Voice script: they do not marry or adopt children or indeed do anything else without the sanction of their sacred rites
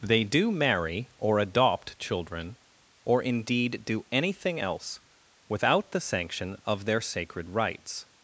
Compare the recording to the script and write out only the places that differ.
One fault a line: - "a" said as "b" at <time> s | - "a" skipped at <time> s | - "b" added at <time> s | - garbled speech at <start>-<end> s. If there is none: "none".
- "not" skipped at 0.5 s